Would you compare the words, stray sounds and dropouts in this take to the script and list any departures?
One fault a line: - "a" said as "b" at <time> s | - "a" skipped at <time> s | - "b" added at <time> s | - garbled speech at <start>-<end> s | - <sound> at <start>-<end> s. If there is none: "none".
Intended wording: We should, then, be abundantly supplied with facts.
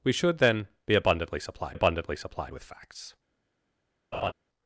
- "abundantly supplied" added at 1.7 s
- laugh at 4.1-4.3 s